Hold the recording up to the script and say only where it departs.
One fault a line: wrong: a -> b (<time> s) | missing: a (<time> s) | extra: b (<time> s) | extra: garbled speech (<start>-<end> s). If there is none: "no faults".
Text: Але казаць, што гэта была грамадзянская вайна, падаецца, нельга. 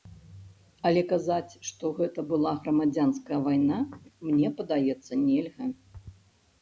extra: мне (4.3 s)